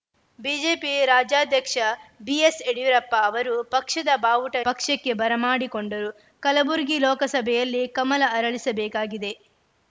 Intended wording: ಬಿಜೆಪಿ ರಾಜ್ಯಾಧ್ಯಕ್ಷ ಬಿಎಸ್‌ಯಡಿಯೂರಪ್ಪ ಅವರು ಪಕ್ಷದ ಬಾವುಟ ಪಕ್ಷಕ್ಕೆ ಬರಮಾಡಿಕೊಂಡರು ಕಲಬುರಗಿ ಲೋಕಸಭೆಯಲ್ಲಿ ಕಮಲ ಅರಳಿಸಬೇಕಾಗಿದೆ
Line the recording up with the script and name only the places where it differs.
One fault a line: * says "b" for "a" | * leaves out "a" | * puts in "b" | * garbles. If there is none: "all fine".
all fine